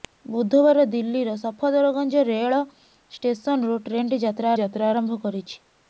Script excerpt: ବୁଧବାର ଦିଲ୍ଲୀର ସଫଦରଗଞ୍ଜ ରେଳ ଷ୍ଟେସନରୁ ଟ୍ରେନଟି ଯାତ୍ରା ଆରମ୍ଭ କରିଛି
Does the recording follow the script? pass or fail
fail